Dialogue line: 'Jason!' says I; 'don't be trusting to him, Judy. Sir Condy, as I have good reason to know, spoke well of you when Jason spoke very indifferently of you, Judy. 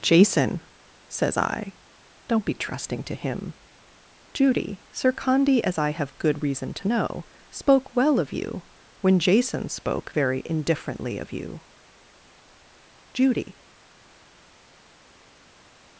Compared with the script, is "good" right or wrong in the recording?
right